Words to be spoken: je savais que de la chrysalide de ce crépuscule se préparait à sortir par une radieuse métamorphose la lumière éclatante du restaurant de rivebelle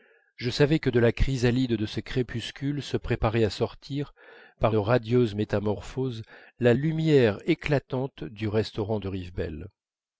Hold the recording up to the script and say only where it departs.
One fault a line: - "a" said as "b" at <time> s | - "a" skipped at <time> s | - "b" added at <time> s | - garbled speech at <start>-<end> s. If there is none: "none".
- "une" skipped at 4.8 s